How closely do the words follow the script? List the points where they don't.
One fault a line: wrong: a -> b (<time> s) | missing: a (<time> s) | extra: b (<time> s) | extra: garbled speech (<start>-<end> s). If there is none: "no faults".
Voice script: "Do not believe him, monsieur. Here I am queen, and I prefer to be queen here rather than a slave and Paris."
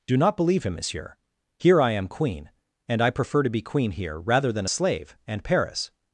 no faults